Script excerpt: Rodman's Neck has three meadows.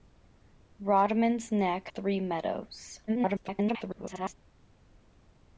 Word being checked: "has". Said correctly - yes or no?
no